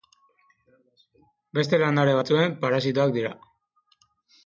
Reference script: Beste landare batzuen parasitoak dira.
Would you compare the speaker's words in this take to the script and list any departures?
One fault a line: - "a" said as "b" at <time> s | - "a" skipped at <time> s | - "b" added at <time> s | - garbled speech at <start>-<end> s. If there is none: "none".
none